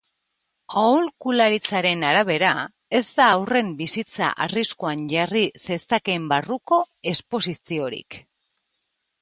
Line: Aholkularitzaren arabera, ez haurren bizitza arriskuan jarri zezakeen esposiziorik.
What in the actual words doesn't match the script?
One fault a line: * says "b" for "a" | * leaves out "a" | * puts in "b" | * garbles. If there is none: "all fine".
* puts in "da"
* puts in "barruko"